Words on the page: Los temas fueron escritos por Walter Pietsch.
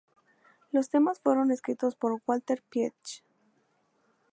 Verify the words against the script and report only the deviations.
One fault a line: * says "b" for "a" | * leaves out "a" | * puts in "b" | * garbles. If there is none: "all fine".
all fine